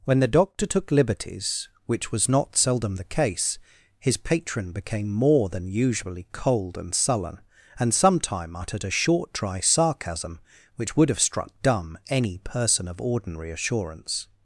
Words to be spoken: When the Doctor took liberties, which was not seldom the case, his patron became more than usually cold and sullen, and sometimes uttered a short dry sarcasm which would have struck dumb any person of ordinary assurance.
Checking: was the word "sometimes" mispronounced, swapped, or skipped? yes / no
yes